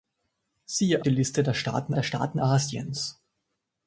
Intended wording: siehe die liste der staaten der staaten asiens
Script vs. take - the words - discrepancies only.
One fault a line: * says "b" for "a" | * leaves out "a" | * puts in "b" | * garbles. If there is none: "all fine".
all fine